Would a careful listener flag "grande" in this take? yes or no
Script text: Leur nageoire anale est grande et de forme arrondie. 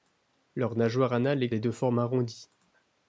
yes